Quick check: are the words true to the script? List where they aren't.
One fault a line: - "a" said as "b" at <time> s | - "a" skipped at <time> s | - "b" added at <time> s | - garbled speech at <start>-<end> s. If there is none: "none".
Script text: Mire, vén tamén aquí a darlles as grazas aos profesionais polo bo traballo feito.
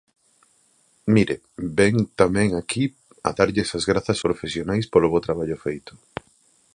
- "aos" skipped at 4.2 s